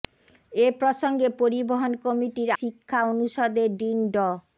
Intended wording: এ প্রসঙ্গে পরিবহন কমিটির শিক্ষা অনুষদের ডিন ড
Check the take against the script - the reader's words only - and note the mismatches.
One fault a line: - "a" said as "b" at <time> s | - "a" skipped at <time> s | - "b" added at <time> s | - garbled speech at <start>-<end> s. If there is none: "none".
none